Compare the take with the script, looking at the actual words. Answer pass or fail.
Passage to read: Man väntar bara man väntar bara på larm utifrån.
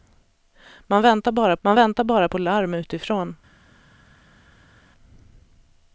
pass